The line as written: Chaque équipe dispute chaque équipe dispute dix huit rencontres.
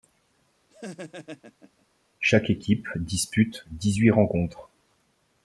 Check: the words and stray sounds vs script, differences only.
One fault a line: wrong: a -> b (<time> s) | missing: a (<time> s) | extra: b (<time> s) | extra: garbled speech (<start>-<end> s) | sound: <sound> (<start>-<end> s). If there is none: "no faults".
sound: laugh (0.7-1.9 s)
missing: chaque équipe dispute (3.7 s)